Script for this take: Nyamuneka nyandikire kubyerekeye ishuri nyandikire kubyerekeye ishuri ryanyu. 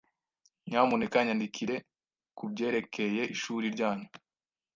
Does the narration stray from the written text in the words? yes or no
yes